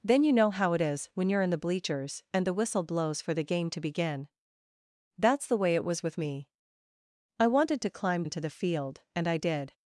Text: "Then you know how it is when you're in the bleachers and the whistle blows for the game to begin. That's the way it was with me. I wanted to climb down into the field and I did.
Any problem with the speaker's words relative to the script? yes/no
yes